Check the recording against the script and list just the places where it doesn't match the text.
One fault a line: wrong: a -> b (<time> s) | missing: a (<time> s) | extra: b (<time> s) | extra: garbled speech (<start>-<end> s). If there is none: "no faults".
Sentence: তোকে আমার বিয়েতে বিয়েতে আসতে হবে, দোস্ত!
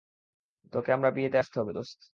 missing: বিয়েতে (1.4 s)